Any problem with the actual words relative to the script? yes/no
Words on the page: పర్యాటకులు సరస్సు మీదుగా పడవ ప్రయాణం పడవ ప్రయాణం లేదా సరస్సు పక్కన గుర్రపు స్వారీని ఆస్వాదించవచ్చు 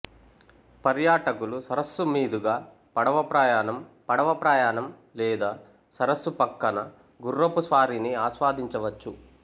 no